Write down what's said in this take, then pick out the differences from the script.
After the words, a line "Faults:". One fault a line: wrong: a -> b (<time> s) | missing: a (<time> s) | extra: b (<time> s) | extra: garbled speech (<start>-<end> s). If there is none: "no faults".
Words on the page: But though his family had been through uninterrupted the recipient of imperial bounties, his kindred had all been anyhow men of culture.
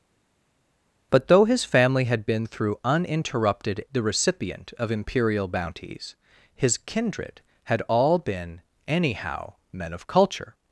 But though his family had been through uninterrupted the recipient of imperial bounties, his kindred had all been anyhow men of culture.
Faults:
no faults